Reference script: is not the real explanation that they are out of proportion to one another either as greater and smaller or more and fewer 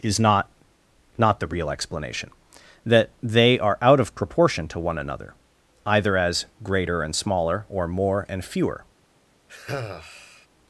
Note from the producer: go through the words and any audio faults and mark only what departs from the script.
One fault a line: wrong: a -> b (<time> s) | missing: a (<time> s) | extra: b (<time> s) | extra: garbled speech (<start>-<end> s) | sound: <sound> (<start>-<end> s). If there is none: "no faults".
extra: not (1.2 s)
sound: sigh (9.5-10.5 s)